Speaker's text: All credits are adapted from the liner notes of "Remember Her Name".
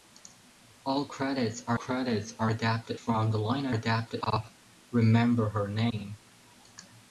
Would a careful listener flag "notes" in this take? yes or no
yes